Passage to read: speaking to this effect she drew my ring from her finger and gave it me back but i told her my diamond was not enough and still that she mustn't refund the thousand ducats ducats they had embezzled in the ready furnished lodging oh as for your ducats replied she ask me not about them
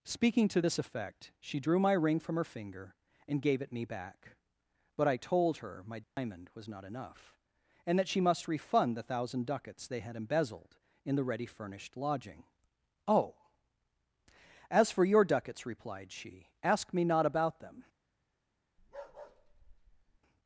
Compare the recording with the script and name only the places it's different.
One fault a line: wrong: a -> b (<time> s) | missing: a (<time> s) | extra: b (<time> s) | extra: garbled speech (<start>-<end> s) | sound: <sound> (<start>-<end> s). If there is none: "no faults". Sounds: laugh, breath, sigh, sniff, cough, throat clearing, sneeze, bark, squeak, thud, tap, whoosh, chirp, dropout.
sound: dropout (6.0-6.2 s)
missing: still (8.0 s)
wrong: mustn't -> must (8.2 s)
missing: ducats (9.9 s)
sound: bark (18.8-20.2 s)